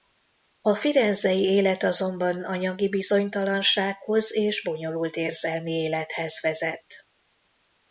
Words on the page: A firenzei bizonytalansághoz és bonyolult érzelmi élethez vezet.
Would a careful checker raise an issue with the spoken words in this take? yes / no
yes